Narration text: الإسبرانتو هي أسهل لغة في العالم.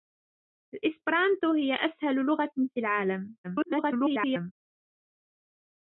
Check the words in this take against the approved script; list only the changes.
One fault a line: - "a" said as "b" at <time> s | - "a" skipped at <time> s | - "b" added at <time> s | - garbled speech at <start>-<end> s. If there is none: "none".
- garbled speech at 3.4-4.5 s